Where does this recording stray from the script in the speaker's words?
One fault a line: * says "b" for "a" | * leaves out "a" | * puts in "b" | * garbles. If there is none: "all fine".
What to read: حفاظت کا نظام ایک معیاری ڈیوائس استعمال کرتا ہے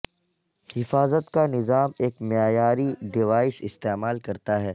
all fine